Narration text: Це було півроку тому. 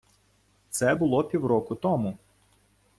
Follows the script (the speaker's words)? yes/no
yes